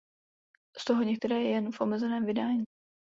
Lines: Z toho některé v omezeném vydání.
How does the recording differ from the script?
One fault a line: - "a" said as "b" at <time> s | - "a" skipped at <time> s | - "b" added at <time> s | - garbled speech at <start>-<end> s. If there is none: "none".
- "jen" added at 1.4 s